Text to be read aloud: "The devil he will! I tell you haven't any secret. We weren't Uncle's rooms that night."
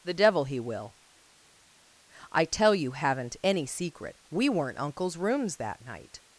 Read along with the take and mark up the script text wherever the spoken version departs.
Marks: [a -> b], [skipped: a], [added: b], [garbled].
"The devil he will! I tell you haven't any secret. We weren't Uncle's rooms that night."